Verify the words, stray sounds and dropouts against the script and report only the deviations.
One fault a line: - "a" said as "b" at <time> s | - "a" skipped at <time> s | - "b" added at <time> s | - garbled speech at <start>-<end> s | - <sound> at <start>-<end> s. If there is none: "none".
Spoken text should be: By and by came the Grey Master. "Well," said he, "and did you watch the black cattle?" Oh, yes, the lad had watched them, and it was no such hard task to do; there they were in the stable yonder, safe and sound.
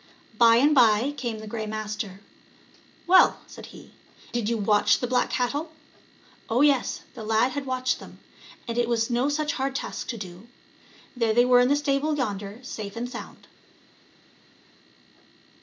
- "and" skipped at 3.9 s